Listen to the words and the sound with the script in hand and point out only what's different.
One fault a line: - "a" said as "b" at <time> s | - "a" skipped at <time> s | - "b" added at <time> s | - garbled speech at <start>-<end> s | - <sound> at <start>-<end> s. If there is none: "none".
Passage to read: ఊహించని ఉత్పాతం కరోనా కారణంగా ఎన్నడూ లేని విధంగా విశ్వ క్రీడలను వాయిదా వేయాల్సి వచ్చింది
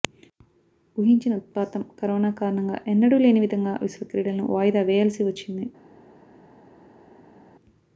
none